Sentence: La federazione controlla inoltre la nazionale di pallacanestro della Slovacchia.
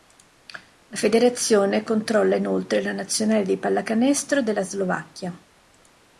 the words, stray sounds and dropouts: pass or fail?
pass